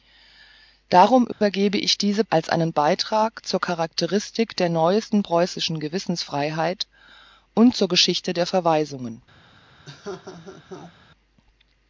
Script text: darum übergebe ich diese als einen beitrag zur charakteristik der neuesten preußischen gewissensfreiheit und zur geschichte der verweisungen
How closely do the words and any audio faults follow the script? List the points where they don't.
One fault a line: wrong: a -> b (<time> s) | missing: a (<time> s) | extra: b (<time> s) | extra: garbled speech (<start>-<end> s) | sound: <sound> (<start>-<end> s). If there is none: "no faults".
sound: dropout (1.3-1.4 s)
sound: laugh (9.9-11.0 s)